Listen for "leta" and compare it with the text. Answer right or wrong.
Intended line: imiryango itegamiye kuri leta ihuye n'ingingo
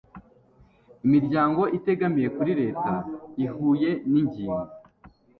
right